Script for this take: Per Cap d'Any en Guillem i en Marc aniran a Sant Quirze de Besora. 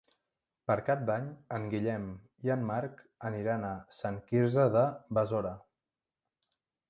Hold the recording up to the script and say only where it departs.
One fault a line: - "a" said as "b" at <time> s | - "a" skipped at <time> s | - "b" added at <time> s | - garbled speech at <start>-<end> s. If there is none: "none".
none